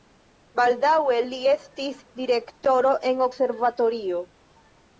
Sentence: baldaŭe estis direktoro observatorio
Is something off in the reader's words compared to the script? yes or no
yes